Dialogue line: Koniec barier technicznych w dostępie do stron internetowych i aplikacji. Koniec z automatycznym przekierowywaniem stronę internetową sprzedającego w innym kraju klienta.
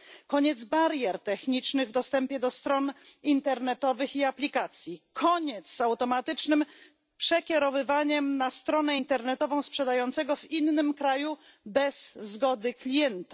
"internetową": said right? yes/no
yes